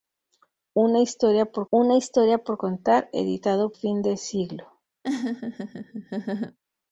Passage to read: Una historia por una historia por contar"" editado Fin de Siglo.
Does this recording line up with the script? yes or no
yes